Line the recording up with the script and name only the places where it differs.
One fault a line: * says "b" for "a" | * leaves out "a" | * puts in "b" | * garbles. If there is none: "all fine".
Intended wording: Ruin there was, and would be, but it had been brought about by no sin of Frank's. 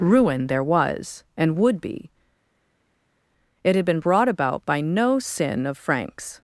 * leaves out "but"